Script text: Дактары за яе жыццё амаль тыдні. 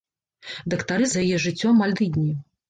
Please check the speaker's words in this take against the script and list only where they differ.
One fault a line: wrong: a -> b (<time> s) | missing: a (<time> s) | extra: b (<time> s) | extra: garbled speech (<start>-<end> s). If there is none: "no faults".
no faults